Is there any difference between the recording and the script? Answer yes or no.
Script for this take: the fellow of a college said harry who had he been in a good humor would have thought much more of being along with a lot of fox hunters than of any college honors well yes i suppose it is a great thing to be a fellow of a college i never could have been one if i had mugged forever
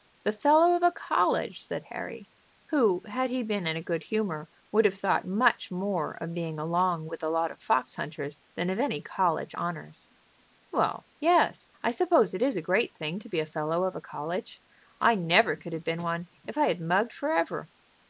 no